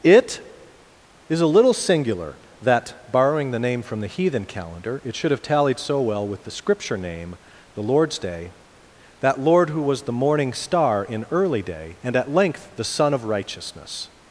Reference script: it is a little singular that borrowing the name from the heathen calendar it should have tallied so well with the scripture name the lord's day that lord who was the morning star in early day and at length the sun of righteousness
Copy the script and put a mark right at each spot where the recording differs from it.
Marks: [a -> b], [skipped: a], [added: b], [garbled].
it is a little singular that borrowing the name from the heathen calendar it should have tallied so well with the scripture name the lord's day that lord who was the morning star in early day and at length the sun of righteousness